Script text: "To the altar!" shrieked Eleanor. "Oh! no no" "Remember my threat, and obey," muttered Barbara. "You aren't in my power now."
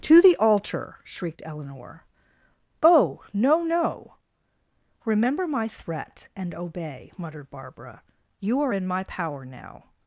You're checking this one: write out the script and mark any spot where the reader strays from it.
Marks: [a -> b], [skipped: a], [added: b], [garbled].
"To the altar!" shrieked Eleanor. "Oh! no no" "Remember my threat, and obey," muttered Barbara. "You [aren't -> are] in my power now."